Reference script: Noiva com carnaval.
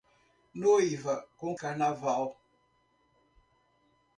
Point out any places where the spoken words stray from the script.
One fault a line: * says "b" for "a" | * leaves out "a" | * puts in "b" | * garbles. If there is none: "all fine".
all fine